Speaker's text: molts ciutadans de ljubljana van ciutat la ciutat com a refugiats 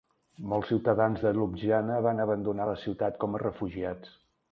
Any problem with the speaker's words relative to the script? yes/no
yes